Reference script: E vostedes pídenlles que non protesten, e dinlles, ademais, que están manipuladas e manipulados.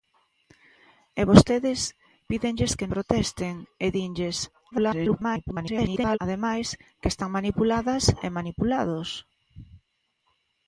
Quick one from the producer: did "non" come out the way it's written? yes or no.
no